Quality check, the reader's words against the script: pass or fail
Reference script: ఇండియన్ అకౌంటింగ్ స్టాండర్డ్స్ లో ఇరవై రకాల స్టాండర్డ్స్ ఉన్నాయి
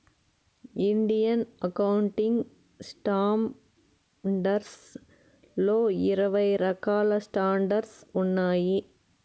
pass